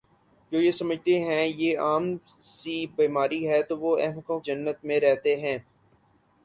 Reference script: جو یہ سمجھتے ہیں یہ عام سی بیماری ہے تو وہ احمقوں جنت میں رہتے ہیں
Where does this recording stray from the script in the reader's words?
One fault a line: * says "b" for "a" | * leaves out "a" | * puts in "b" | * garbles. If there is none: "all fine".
all fine